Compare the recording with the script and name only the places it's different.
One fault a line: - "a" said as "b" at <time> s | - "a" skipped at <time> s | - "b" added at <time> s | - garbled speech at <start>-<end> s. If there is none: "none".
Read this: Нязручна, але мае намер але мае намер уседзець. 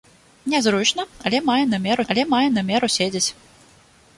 none